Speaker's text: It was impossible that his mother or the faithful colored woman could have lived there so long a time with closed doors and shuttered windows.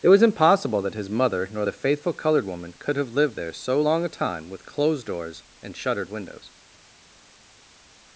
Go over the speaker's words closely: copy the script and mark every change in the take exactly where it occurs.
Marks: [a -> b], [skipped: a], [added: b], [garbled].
It was impossible that his mother [or -> nor] the faithful colored woman could have lived there so long a time with closed doors and shuttered windows.